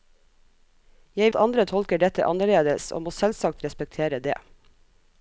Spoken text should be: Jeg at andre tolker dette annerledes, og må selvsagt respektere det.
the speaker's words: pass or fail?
pass